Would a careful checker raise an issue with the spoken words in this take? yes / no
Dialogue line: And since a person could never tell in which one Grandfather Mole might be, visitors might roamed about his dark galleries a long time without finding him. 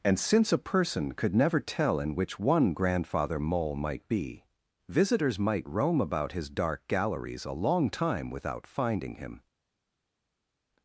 yes